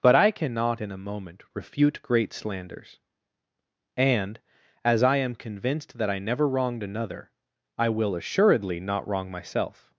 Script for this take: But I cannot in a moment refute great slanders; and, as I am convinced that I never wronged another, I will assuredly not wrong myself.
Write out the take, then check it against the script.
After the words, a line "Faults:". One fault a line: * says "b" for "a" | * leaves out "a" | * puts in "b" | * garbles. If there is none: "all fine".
But I cannot in a moment refute great slanders; and, as I am convinced that I never wronged another, I will assuredly not wrong myself.
Faults:
all fine